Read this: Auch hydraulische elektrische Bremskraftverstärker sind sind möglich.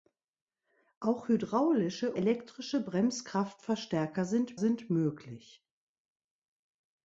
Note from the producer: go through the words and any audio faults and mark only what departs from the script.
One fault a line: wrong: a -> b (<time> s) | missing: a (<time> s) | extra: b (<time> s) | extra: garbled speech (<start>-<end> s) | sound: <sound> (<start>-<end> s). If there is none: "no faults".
no faults